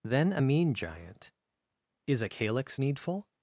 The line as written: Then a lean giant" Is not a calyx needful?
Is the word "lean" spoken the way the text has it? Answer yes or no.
no